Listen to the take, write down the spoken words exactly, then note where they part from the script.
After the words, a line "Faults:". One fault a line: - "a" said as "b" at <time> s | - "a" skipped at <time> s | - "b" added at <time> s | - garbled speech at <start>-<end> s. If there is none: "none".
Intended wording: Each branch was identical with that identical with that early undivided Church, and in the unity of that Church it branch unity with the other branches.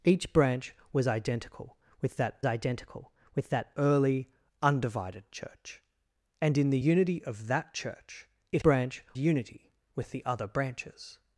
Each branch was identical with that identical with that early undivided Church, and in the unity of that Church it branch unity with the other branches.
Faults:
none